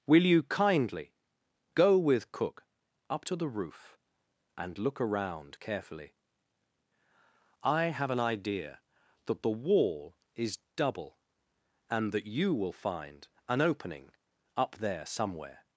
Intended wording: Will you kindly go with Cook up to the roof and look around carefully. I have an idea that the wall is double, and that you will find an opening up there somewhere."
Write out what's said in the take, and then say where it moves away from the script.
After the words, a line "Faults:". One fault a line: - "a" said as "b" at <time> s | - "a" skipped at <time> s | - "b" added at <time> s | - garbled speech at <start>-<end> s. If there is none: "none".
Will you kindly go with Cook up to the roof and look around carefully. I have an idea that the wall is double, and that you will find an opening up there somewhere."
Faults:
none